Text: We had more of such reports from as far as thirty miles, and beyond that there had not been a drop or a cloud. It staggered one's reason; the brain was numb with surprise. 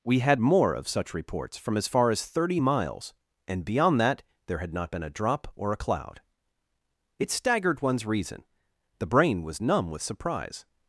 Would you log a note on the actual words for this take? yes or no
no